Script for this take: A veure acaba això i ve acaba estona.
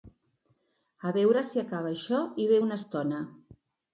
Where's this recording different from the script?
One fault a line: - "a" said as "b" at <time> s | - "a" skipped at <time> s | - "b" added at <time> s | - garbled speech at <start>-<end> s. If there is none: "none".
- "si" added at 1.5 s
- "acaba" said as "una" at 2.7 s